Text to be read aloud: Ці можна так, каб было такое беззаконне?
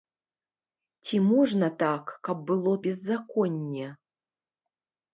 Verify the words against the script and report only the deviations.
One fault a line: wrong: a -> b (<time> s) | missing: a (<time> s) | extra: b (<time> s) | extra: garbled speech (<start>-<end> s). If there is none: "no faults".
missing: такое (2.7 s)